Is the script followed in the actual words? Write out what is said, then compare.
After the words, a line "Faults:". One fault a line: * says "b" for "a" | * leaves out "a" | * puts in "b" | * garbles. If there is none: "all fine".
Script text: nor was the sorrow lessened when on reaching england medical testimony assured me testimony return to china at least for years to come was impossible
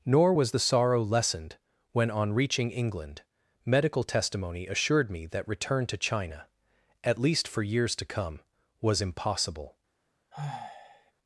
nor was the sorrow lessened when on reaching england medical testimony assured me that return to china at least for years to come was impossible
Faults:
* says "that" for "testimony"